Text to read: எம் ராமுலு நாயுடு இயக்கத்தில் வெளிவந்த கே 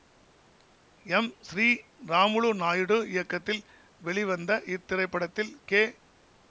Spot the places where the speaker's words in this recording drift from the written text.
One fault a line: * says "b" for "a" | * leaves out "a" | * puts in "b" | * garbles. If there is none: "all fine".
* puts in "ஸ்ரீ"
* puts in "இத்திரைப்படத்தில்"